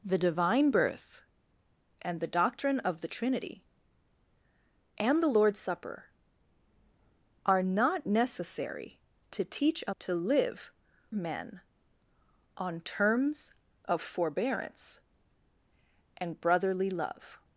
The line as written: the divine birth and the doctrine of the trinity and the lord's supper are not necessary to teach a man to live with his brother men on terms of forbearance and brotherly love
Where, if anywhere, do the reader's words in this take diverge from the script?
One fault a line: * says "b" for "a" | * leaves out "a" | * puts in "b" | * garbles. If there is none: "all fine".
* leaves out "man"
* leaves out "with his brother"